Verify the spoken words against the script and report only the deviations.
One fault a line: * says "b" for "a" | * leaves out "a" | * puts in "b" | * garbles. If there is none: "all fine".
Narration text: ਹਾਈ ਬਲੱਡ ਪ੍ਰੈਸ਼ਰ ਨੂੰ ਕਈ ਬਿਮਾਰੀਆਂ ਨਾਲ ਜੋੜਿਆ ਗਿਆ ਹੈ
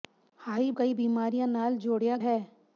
* leaves out "ਬਲੱਡ ਪ੍ਰੈਸ਼ਰ ਨੂੰ"
* leaves out "ਗਿਆ"